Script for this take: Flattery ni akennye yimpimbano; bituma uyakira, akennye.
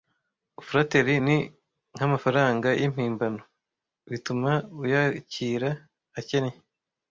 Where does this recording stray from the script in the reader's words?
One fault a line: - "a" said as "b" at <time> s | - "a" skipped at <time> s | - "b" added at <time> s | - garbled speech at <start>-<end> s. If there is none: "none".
- "akennye" said as "nkamafaranga" at 1.9 s